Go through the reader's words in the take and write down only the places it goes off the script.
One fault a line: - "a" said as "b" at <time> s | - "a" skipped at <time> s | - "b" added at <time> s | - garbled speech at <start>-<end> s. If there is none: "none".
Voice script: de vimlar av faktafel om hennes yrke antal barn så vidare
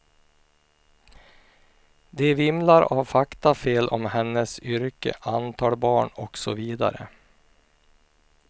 - "och" added at 6.1 s